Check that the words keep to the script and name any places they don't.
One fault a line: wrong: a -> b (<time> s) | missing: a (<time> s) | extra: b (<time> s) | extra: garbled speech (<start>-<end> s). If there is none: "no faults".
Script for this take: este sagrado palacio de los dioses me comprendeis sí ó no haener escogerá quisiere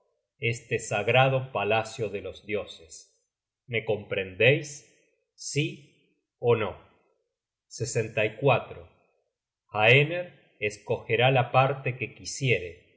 extra: la parte que (11.3 s)